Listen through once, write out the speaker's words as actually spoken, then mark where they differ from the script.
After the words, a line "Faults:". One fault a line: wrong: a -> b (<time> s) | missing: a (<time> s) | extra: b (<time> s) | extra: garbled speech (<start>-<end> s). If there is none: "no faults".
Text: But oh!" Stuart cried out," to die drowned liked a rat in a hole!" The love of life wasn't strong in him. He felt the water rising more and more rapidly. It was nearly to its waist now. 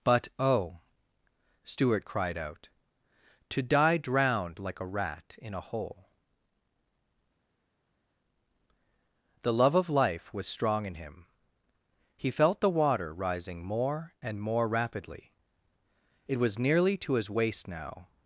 But oh!" Stuart cried out," to die drowned like a rat in a hole!" The love of life was strong in him. He felt the water rising more and more rapidly. It was nearly to his waist now.
Faults:
wrong: liked -> like (4.6 s)
wrong: wasn't -> was (10.3 s)
wrong: its -> his (17.1 s)